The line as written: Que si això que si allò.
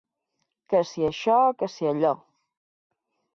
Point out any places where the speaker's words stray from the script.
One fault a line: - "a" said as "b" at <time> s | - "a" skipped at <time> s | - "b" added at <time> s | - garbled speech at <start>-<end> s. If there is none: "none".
none